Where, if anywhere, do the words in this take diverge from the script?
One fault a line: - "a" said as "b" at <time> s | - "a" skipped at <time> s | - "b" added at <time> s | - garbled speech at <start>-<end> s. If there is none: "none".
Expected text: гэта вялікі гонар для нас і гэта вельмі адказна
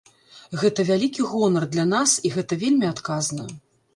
none